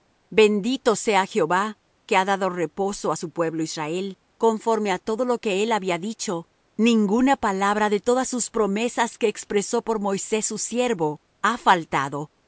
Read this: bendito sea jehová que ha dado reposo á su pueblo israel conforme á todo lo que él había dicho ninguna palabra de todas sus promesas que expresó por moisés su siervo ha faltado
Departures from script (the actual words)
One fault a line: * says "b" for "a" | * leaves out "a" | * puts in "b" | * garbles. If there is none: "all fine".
all fine